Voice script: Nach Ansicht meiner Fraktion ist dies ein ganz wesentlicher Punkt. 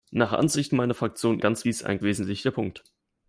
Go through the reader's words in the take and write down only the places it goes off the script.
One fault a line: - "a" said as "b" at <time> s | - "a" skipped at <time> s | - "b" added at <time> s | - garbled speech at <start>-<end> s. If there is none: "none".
- "ist" said as "ganz" at 1.4 s
- "ganz" skipped at 2.0 s